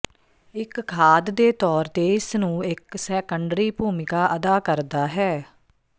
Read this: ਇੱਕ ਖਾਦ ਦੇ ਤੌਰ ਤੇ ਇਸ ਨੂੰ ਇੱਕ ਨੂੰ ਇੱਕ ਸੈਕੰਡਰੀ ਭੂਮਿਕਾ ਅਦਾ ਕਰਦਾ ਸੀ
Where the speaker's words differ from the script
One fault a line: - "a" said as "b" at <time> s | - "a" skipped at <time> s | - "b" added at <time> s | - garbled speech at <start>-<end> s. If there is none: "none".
- "ਨੂੰ ਇੱਕ" skipped at 3.0 s
- "ਸੀ" said as "ਹੈ" at 5.1 s